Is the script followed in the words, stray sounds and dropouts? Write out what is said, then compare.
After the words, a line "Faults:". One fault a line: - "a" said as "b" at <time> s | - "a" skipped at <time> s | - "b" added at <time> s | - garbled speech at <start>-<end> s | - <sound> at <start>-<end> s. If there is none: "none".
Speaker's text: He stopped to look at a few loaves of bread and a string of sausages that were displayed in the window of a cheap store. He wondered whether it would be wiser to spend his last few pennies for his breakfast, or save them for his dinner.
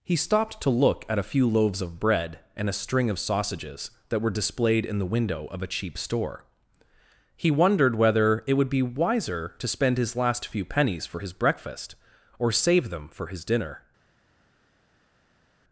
He stopped to look at a few loaves of bread and a string of sausages that were displayed in the window of a cheap store. He wondered whether it would be wiser to spend his last few pennies for his breakfast, or save them for his dinner.
Faults:
none